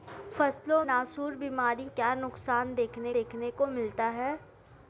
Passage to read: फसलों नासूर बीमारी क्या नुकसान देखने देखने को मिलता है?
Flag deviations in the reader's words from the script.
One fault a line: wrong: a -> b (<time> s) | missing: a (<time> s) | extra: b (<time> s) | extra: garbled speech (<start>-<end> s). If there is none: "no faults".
no faults